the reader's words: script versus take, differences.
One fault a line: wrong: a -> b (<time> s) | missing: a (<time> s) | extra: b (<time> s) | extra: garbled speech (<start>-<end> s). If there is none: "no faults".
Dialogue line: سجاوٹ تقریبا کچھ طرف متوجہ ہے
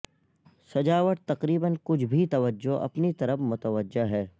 extra: بھی توجہ اپنی (2.0 s)